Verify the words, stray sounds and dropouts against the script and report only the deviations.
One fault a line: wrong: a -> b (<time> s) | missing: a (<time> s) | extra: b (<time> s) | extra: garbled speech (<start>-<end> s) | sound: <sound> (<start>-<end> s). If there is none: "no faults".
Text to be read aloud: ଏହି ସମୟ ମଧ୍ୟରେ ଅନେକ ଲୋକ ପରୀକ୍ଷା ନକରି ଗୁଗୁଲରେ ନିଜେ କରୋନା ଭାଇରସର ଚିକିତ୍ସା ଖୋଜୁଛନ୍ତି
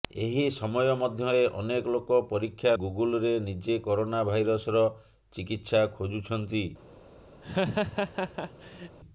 missing: ନକରି (2.7 s)
sound: laugh (7.4-9.0 s)